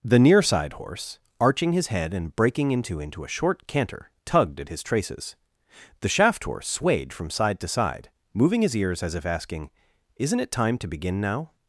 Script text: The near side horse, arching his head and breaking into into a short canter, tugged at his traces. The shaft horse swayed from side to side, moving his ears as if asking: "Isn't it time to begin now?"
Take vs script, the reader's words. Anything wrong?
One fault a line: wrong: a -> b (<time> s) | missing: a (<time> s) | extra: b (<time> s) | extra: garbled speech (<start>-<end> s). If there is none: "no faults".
no faults